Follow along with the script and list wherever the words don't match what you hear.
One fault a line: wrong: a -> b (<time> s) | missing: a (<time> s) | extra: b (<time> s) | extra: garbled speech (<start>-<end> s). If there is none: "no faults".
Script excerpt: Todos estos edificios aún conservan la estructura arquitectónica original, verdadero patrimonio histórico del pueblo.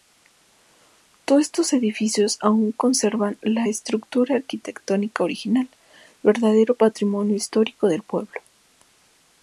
no faults